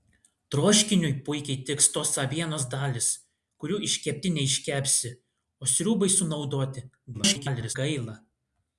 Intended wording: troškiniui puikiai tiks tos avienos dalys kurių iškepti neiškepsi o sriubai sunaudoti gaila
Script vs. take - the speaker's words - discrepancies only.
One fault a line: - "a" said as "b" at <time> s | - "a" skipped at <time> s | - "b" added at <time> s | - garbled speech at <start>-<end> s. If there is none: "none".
- garbled speech at 7.1-7.8 s